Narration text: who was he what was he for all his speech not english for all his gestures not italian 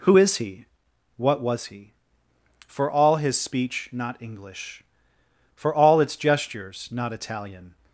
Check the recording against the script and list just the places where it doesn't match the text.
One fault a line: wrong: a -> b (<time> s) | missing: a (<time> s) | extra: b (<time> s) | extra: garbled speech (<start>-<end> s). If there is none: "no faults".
wrong: was -> is (0.2 s)
wrong: his -> its (6.0 s)